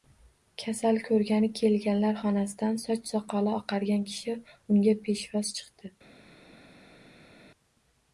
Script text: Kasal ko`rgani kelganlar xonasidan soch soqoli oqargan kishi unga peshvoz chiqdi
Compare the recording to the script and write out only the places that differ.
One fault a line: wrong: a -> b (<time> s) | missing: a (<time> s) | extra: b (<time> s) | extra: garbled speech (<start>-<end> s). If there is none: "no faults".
no faults